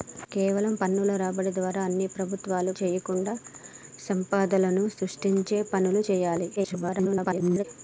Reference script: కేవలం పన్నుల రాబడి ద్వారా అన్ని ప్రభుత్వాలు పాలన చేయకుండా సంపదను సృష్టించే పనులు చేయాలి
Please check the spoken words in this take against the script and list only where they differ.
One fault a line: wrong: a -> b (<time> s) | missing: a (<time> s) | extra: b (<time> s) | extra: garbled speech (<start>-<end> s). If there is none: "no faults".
missing: పాలన (2.7 s)
extra: garbled speech (6.6-7.6 s)